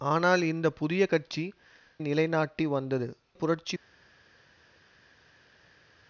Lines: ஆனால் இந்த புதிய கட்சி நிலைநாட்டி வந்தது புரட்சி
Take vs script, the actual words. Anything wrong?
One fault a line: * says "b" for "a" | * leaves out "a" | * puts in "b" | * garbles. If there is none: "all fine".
all fine